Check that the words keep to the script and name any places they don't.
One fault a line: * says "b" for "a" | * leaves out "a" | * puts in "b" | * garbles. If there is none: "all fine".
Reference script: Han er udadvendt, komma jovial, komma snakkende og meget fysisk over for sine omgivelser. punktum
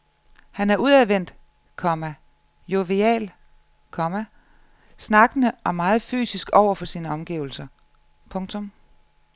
all fine